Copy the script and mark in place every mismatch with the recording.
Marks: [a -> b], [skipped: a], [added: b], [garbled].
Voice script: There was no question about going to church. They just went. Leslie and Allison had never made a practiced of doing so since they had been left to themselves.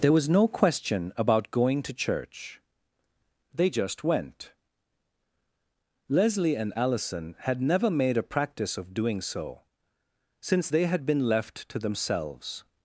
There was no question about going to church. They just went. Leslie and Allison had never made a [practiced -> practice] of doing so since they had been left to themselves.